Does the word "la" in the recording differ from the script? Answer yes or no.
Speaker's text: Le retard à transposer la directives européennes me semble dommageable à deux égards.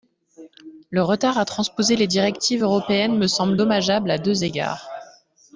yes